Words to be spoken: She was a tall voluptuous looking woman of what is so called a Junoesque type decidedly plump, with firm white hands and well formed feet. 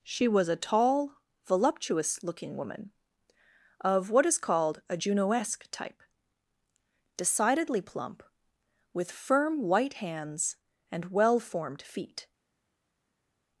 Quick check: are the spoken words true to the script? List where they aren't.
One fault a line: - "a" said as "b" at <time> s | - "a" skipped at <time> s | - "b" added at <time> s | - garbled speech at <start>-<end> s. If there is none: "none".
- "so" skipped at 4.4 s